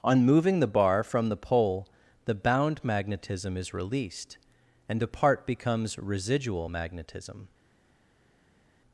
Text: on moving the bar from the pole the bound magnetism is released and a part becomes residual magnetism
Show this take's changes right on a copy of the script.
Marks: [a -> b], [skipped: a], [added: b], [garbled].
on moving the bar from the pole the bound magnetism is released and a part becomes residual magnetism